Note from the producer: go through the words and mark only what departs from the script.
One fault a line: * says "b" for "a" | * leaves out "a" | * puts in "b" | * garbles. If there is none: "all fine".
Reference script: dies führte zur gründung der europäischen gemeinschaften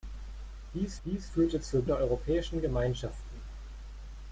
* puts in "dies"
* leaves out "gründung"